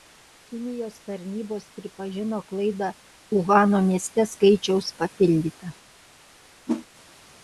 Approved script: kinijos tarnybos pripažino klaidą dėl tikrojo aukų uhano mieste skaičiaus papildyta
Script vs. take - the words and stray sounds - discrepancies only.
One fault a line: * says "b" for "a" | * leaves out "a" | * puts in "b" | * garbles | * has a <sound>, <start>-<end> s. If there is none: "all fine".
* leaves out "dėl tikrojo aukų"
* has a whoosh, 6.7-6.9 s